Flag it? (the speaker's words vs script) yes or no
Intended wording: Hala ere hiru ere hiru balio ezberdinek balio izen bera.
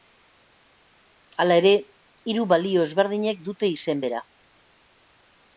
yes